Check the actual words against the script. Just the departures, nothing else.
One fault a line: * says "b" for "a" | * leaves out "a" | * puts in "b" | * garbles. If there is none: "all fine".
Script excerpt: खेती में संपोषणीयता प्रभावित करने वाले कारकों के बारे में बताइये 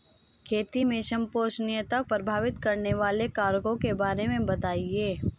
all fine